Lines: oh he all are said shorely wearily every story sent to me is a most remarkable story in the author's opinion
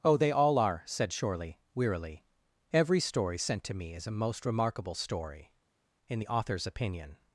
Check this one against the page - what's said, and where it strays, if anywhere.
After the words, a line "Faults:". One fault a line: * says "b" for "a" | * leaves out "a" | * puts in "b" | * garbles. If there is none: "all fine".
oh they all are said shorely wearily every story sent to me is a most remarkable story in the author's opinion
Faults:
* says "they" for "he"